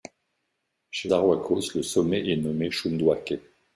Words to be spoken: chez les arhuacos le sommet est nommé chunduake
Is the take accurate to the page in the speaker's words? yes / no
no